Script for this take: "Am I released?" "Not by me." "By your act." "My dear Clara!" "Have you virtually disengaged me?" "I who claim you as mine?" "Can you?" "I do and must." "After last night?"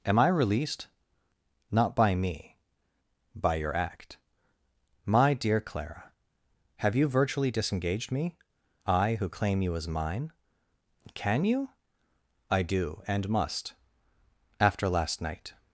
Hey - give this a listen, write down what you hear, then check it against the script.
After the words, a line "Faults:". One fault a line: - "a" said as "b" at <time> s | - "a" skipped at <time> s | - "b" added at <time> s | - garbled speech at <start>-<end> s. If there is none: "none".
"Am I released?" "Not by me." "By your act." "My dear Clara!" "Have you virtually disengaged me?" "I who claim you as mine?" "Can you?" "I do and must." "After last night?"
Faults:
none